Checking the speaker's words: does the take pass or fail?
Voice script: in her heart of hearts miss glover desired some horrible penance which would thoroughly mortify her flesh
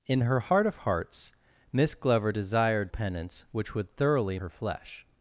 fail